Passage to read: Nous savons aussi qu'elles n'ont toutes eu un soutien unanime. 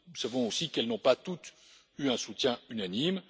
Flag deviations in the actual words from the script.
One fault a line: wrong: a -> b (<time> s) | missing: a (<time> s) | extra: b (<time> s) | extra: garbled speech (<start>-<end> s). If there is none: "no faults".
extra: pas (1.0 s)